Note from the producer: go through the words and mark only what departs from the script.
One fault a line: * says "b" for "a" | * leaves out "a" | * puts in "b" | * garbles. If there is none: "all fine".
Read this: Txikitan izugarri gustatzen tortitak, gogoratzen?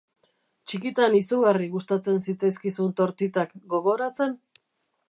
* puts in "zitzaizkizun"